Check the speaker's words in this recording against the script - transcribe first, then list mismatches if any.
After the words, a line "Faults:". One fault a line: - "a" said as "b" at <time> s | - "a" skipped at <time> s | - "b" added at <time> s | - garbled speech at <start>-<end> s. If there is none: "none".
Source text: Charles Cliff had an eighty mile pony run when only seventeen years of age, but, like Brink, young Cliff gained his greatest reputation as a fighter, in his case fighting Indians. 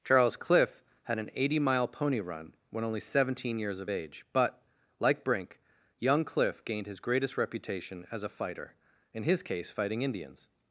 Charles Cliff had an eighty mile pony run when only seventeen years of age, but, like Brink, young Cliff gained his greatest reputation as a fighter, in his case fighting Indians.
Faults:
none